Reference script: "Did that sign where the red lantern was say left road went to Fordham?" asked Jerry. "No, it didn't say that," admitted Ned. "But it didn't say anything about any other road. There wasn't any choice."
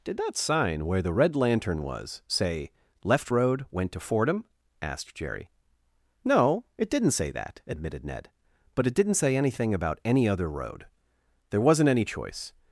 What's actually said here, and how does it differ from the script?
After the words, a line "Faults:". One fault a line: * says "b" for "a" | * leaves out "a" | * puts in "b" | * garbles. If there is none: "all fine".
"Did that sign where the red lantern was say left road went to Fordham?" asked Jerry. "No, it didn't say that," admitted Ned. "But it didn't say anything about any other road. There wasn't any choice."
Faults:
all fine